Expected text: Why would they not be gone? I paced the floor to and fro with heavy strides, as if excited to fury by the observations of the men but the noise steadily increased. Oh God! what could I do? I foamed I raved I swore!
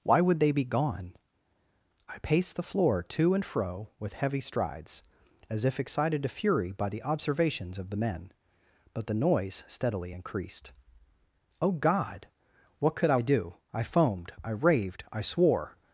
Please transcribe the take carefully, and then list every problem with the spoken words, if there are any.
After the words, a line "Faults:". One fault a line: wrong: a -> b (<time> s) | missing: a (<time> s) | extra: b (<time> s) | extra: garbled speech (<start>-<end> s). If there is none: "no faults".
Why would they be gone? I paced the floor to and fro with heavy strides, as if excited to fury by the observations of the men but the noise steadily increased. Oh God! what could I do? I foamed I raved I swore!
Faults:
missing: not (0.5 s)